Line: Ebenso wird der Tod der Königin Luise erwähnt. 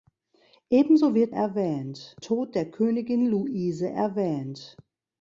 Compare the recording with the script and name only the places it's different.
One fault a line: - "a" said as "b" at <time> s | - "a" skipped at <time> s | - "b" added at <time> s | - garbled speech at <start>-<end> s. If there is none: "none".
- "der" said as "erwähnt" at 1.3 s